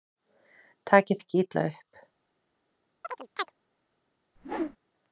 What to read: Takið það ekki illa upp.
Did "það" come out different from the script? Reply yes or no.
yes